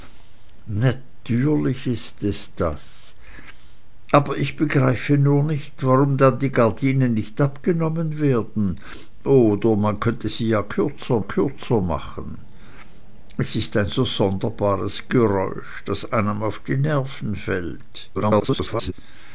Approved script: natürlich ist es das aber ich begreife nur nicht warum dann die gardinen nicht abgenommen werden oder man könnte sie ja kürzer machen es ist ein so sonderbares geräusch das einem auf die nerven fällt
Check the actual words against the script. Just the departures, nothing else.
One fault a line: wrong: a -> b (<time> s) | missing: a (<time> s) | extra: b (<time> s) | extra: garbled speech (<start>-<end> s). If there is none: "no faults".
extra: kürzer (11.2 s)
extra: garbled speech (18.1-18.9 s)